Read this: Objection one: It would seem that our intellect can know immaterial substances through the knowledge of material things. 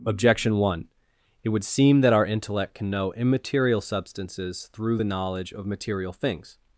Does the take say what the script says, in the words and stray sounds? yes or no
yes